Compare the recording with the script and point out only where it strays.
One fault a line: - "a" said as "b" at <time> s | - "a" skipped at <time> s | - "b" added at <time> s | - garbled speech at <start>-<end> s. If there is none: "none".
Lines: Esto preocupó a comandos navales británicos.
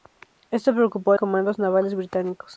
none